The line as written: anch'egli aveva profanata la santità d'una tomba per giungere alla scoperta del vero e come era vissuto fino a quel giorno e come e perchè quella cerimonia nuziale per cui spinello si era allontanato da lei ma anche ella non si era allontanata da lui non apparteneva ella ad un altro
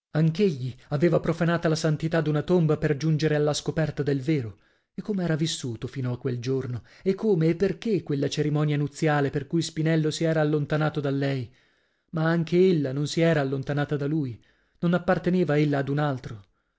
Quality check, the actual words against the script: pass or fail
pass